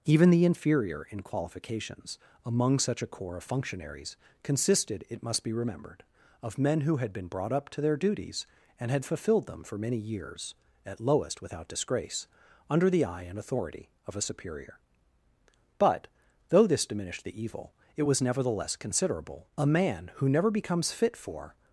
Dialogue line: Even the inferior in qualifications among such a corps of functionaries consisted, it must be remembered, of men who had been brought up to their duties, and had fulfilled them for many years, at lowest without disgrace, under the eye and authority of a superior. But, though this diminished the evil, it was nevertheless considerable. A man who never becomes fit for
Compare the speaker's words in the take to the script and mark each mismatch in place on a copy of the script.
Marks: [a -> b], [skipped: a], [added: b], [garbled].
Even the inferior in qualifications among such a corps of functionaries consisted, it must be remembered, of men who had been brought up to their duties, and had fulfilled them for many years, at lowest without disgrace, under the eye and authority of a superior. But, though this diminished the evil, it was nevertheless considerable. A man who never becomes fit for